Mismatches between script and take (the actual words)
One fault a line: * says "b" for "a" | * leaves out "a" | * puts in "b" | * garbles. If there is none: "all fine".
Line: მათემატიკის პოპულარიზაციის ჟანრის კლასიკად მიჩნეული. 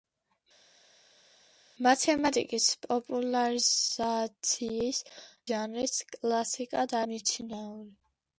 all fine